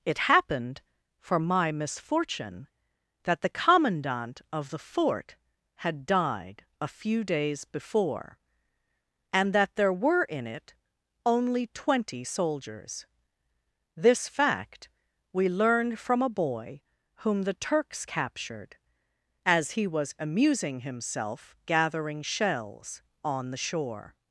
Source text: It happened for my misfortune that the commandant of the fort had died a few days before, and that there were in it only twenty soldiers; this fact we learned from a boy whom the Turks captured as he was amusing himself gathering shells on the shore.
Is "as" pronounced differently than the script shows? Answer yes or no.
no